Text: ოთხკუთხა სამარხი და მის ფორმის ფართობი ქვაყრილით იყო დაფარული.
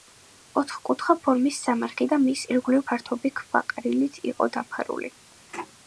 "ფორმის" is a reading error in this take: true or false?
true